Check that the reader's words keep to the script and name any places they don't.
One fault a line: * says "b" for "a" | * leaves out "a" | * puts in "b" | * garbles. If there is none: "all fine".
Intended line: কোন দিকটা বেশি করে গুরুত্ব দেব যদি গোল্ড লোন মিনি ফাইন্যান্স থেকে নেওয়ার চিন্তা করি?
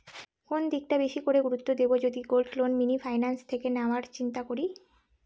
all fine